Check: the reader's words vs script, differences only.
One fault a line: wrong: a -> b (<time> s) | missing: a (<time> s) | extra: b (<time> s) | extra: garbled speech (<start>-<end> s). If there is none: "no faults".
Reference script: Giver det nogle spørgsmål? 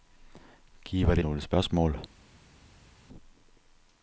no faults